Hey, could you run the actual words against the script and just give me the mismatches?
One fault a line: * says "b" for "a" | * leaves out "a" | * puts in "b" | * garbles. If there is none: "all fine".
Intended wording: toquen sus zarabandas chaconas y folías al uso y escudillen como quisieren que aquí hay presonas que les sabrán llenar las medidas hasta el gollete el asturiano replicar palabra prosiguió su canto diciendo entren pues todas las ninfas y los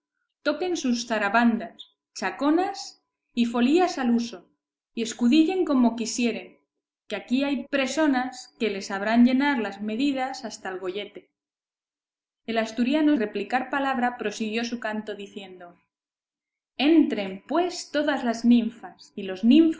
all fine